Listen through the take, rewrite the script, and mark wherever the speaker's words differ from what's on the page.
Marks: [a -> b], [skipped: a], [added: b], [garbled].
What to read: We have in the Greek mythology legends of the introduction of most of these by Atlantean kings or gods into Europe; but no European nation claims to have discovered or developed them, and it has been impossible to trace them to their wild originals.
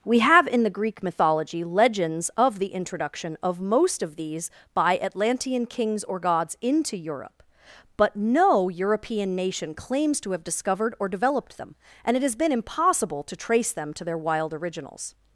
We have in the Greek mythology legends of the introduction of most of these by Atlantean kings or gods into Europe; but no European nation claims to have discovered or developed them, and it has been impossible to trace them to their wild originals.